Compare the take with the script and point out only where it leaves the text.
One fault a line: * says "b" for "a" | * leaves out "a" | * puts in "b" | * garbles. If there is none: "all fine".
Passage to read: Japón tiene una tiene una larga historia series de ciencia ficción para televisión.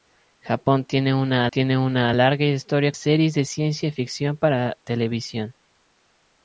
all fine